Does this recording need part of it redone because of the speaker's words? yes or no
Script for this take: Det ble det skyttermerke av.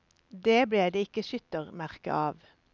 yes